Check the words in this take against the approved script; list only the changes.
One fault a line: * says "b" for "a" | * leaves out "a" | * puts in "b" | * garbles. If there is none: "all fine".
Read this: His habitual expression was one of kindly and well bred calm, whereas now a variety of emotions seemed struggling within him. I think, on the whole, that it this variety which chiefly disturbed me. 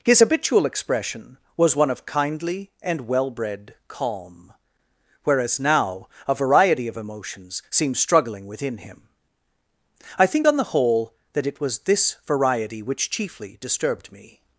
* puts in "was"